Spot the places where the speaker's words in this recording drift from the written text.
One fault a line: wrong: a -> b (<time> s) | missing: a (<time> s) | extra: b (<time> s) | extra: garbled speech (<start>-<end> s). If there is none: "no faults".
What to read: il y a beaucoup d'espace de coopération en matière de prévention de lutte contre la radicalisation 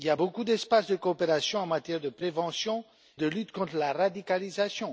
no faults